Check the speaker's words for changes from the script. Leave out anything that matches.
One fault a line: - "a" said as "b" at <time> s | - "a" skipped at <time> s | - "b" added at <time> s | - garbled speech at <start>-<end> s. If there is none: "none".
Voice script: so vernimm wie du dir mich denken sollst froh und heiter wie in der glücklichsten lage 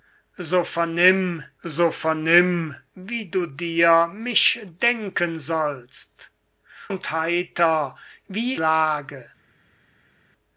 - "so vernimm" added at 1.6 s
- "froh" skipped at 6.3 s
- "in der glücklichsten" skipped at 8.5 s